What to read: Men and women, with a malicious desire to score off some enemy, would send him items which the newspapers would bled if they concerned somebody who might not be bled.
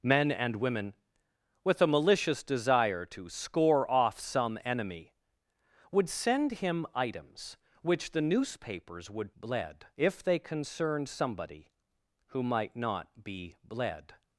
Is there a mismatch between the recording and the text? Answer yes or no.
no